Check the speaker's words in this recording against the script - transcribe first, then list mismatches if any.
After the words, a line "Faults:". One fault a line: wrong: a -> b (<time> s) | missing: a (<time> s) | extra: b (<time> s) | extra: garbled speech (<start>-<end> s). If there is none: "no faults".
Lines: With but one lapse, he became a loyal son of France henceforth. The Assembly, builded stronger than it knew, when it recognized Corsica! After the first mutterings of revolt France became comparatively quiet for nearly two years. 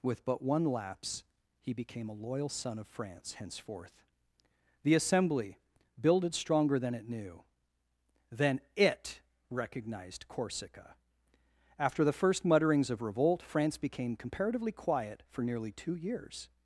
With but one lapse, he became a loyal son of France henceforth. The Assembly, builded stronger than it knew, then it recognized Corsica! After the first mutterings of revolt France became comparatively quiet for nearly two years.
Faults:
wrong: when -> then (8.3 s)